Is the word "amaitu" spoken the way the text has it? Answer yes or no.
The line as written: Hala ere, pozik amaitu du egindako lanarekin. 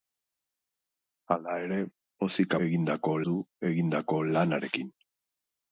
no